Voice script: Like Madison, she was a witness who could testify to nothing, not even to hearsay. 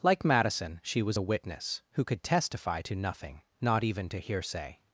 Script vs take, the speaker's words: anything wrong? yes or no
no